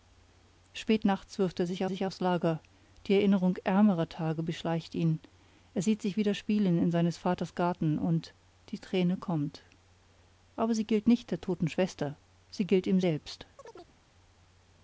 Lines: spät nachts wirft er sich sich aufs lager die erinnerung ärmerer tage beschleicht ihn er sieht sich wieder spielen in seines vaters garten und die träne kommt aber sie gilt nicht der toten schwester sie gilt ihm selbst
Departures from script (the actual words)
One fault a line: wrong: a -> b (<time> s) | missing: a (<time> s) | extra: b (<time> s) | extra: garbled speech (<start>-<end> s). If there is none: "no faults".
no faults